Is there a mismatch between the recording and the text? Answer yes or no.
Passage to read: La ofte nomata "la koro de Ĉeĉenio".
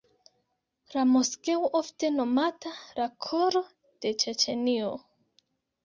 yes